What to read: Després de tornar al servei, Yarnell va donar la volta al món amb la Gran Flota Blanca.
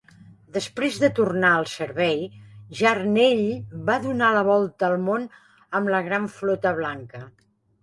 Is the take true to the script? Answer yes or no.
yes